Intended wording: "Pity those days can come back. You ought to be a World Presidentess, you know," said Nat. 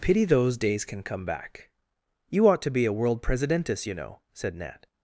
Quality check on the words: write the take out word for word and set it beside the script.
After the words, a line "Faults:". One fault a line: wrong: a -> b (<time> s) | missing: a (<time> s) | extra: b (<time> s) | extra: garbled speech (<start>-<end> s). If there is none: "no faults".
"Pity those days can come back. You ought to be a World Presidentess, you know," said Nat.
Faults:
no faults